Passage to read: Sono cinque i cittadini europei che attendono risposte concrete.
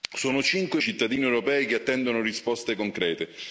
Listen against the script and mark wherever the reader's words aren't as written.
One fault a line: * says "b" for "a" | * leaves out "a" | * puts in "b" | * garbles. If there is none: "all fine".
all fine